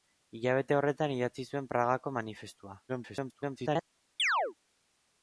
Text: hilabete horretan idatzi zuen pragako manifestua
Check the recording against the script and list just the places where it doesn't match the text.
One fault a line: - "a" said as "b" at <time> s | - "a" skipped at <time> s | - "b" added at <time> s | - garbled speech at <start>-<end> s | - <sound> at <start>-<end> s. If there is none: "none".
- garbled speech at 2.9-3.8 s
- chirp at 4.2-4.5 s